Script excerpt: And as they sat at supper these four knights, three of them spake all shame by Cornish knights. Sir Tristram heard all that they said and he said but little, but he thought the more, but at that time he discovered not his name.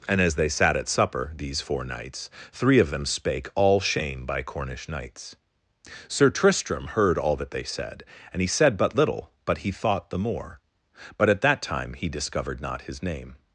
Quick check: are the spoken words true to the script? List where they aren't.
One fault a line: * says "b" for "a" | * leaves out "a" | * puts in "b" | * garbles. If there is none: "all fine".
all fine